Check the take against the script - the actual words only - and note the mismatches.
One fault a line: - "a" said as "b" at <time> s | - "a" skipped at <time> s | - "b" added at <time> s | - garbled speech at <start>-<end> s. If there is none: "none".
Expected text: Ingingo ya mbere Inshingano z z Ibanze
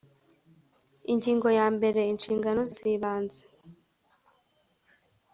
none